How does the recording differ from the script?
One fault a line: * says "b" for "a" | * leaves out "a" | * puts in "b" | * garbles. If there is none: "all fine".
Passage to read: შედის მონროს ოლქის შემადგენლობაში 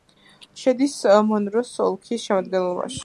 all fine